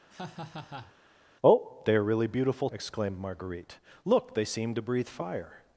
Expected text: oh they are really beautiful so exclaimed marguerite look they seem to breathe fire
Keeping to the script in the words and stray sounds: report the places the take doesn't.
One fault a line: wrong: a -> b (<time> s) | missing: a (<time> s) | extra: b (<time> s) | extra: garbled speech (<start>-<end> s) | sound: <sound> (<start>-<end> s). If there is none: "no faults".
sound: laugh (0.1-0.9 s)
missing: so (2.7 s)